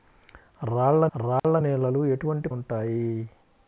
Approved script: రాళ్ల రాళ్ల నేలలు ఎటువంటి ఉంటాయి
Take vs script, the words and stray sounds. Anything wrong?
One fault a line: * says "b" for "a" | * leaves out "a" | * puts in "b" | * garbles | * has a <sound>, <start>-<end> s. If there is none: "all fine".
* has a dropout, 1.4-1.4 s